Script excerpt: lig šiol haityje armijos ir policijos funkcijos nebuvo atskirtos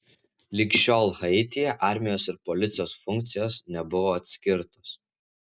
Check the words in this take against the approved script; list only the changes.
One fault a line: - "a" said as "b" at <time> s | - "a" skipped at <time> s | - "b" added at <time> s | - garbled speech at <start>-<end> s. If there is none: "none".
none